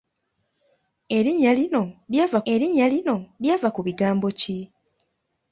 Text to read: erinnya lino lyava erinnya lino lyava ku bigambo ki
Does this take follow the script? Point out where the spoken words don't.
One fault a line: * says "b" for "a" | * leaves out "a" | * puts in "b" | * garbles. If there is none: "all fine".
all fine